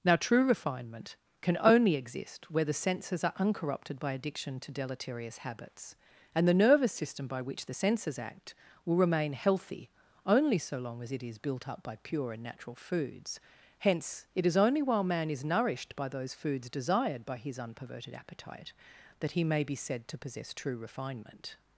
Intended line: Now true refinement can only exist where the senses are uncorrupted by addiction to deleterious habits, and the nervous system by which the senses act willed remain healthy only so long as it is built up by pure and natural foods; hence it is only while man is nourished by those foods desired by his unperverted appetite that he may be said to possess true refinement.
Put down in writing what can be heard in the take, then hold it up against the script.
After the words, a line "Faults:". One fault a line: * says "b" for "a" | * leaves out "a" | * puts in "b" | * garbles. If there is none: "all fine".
Now true refinement can only exist where the senses are uncorrupted by addiction to deleterious habits, and the nervous system by which the senses act will remain healthy only so long as it is built up by pure and natural foods; hence it is only while man is nourished by those foods desired by his unperverted appetite that he may be said to possess true refinement.
Faults:
* says "will" for "willed"